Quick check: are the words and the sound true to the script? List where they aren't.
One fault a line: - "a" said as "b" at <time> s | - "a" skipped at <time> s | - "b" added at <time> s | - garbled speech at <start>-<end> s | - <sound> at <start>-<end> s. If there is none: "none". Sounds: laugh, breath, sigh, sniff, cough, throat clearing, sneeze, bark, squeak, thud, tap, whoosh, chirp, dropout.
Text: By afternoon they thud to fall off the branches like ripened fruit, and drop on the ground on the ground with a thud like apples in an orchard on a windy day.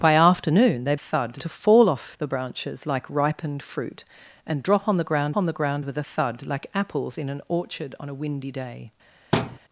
- thud at 9.3-9.6 s